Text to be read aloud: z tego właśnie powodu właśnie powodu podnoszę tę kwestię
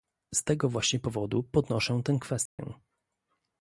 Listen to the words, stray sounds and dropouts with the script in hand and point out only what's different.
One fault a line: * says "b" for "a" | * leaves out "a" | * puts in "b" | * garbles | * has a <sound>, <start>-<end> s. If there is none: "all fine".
* leaves out "właśnie powodu"
* has a dropout, 2.5-2.6 s